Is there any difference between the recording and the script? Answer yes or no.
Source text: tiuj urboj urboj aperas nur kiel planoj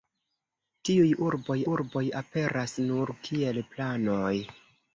no